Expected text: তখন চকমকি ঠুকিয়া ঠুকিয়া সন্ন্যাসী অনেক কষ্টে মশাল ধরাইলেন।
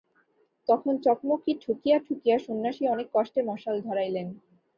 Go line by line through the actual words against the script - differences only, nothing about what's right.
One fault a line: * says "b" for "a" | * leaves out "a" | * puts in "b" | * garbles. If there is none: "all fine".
all fine